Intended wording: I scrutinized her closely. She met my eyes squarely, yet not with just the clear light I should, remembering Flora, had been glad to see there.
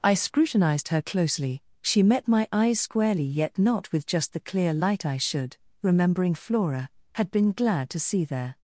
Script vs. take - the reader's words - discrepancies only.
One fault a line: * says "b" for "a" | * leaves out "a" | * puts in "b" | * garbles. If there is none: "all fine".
all fine